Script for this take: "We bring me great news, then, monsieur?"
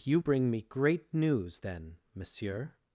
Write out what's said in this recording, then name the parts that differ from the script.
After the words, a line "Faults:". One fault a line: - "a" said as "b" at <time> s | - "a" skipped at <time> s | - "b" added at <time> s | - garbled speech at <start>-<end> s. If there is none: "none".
"You bring me great news, then, monsieur?"
Faults:
- "We" said as "You" at 0.0 s